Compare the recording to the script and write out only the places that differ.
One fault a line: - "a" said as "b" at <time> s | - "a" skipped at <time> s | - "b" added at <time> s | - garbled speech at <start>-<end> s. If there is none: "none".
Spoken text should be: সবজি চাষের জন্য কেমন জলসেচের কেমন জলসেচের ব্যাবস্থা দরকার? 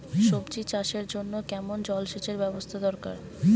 - "কেমন জলসেচের" skipped at 2.4 s